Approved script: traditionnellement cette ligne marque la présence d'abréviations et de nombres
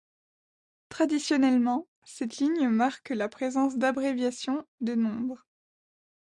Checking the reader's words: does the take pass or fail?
fail